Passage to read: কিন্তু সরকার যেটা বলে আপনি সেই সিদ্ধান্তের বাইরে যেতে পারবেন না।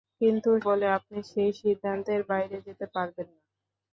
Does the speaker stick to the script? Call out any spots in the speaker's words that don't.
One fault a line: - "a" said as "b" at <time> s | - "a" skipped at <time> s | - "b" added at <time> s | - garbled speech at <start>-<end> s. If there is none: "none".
- "সরকার যেটা" skipped at 0.5 s